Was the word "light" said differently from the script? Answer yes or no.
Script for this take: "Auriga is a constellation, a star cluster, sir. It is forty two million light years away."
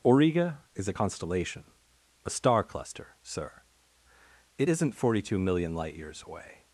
no